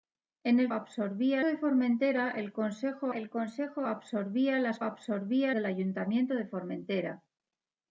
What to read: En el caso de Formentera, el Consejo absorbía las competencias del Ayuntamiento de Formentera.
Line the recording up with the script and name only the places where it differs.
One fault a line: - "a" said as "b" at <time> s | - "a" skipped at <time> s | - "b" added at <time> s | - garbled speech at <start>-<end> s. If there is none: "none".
- "caso" said as "absorbía" at 0.7 s
- "el Consejo" added at 3.1 s
- "competencias" said as "absorbía" at 4.8 s